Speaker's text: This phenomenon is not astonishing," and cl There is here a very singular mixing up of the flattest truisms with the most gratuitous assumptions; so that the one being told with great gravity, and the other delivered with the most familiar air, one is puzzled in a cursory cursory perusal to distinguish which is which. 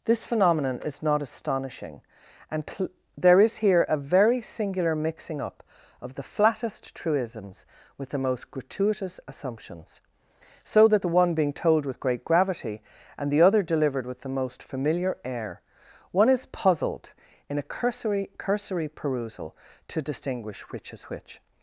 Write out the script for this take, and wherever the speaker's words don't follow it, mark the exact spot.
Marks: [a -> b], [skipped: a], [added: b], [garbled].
This phenomenon is not astonishing," and cl There is here a very singular mixing up of the flattest truisms with the most gratuitous assumptions; so that the one being told with great gravity, and the other delivered with the most familiar air, one is puzzled in a cursory cursory perusal to distinguish which is which.